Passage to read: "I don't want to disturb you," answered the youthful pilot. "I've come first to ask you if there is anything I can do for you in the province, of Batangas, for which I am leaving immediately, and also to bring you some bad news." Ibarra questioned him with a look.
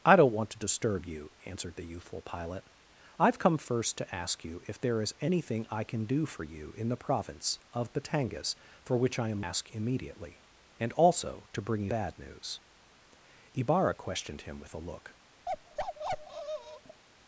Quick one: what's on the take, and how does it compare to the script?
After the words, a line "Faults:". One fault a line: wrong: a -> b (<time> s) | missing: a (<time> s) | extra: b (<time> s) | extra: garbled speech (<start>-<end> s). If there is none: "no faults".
"I don't want to disturb you," answered the youthful pilot. "I've come first to ask you if there is anything I can do for you in the province, of Batangas, for which I am ask immediately, and also to bring you bad news." Ibarra questioned him with a look.
Faults:
wrong: leaving -> ask (9.4 s)
missing: some (11.9 s)